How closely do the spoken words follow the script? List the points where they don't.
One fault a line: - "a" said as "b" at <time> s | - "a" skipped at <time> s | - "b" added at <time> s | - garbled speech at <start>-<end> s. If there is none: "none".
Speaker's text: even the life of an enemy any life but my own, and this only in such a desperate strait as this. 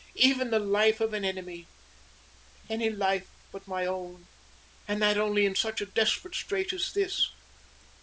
- "this" said as "that" at 5.0 s